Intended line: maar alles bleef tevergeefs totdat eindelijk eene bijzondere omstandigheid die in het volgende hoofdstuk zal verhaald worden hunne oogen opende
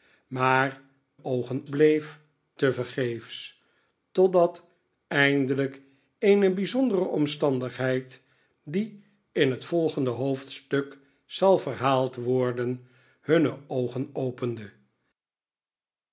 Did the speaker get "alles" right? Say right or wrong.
wrong